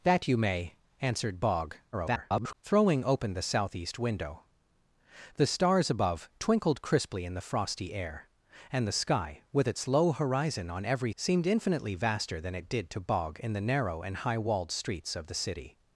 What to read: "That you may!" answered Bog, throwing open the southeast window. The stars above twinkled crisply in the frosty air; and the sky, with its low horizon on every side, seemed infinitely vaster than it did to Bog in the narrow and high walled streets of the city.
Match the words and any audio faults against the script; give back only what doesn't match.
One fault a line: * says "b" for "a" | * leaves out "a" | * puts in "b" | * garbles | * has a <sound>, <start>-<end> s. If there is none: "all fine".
* garbles
* leaves out "side"